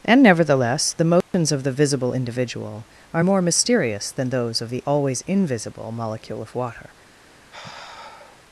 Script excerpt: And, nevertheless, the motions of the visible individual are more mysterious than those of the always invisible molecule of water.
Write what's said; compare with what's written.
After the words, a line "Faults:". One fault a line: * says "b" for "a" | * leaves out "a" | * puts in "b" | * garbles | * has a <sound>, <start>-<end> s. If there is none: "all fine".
And, nevertheless, the motions of the visible individual are more mysterious than those of the always invisible molecule of water.
Faults:
* has a dropout, 1.2-1.3 s
* has a sigh, 7.5-8.4 s